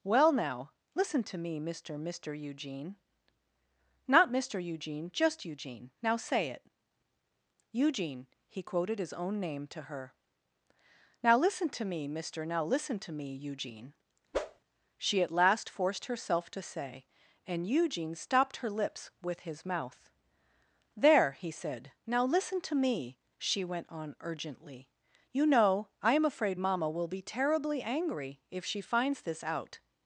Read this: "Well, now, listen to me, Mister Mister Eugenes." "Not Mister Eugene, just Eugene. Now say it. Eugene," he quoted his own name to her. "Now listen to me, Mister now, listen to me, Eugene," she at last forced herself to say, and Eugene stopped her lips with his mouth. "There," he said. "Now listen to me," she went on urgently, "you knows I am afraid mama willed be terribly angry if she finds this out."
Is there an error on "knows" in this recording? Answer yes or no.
yes